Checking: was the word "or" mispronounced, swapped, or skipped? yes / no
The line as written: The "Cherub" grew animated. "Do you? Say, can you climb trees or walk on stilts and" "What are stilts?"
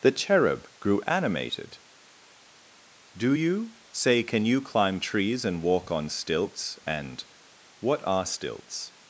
yes